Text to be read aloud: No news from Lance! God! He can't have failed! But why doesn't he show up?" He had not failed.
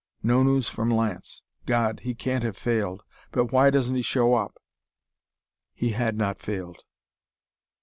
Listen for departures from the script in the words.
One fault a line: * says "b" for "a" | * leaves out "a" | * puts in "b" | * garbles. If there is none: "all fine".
all fine